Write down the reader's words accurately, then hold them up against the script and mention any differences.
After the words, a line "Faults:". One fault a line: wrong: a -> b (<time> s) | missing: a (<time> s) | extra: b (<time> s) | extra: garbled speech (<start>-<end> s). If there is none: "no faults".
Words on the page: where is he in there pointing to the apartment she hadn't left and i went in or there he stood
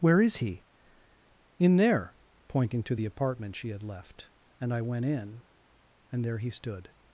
where is he in there pointing to the apartment she had left and i went in and there he stood
Faults:
wrong: hadn't -> had (3.7 s)
wrong: or -> and (6.1 s)